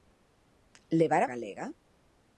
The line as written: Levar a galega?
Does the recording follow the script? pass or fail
pass